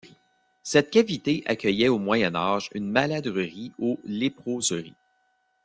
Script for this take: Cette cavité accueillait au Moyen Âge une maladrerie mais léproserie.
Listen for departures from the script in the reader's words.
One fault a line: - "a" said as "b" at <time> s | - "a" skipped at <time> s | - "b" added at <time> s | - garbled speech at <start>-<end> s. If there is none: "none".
- "mais" said as "ou" at 3.8 s